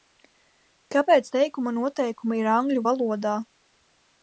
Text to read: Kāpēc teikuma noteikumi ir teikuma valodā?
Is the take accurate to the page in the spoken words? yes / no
no